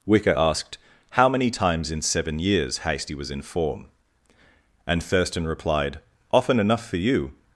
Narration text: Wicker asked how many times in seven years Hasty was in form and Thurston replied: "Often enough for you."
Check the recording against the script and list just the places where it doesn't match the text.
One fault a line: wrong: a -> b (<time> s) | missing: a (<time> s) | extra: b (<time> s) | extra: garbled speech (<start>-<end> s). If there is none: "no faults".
no faults